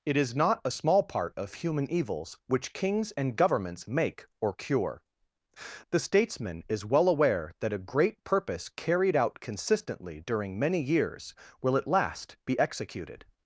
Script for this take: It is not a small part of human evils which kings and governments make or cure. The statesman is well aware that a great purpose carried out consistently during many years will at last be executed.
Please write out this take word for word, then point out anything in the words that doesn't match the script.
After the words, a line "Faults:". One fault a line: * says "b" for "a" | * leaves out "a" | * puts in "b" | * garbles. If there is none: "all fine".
It is not a small part of human evils which kings and governments make or cure. The statesman is well aware that a great purpose carried out consistently during many years will at last be executed.
Faults:
all fine